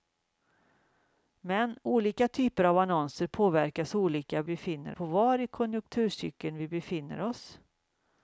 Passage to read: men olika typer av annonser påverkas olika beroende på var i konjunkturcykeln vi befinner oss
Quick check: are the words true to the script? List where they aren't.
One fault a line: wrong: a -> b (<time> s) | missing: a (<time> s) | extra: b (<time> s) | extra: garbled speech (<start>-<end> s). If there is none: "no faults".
wrong: beroende -> befinner (4.4 s)